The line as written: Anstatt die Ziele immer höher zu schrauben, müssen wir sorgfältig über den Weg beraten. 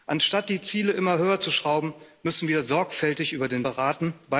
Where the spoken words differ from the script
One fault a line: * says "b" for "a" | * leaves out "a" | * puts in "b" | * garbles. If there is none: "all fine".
* leaves out "Weg"